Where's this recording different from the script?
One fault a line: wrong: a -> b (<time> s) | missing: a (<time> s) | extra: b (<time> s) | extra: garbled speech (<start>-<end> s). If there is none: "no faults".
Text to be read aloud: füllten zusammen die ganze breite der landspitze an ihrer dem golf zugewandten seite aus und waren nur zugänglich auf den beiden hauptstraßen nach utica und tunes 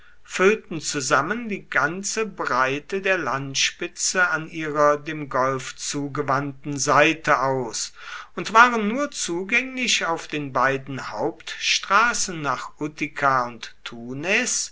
no faults